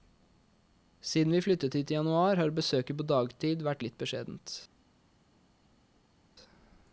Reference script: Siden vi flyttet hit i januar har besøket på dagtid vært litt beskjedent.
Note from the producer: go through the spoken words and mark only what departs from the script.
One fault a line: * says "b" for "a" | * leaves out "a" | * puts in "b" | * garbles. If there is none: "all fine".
all fine